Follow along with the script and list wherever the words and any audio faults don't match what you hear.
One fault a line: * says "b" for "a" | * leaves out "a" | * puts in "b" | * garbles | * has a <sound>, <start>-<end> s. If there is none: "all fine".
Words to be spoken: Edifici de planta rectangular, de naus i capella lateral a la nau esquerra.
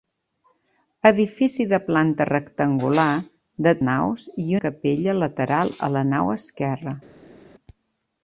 all fine